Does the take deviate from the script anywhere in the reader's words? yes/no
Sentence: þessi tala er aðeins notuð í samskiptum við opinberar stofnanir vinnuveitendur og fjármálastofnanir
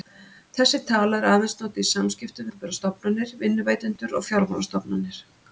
yes